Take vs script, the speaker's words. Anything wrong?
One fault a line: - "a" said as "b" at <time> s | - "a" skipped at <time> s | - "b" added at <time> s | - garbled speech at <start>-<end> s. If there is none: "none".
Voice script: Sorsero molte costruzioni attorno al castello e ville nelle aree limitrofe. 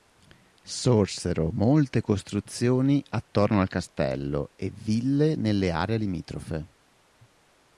none